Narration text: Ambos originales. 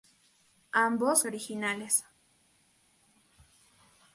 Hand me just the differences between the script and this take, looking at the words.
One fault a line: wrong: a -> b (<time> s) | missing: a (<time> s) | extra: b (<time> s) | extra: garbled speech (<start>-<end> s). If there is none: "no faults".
no faults